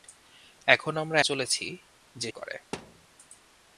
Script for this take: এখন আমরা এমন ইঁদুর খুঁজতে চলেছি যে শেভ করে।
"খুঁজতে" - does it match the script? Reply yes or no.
no